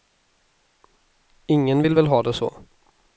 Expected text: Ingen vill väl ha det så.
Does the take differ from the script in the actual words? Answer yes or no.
no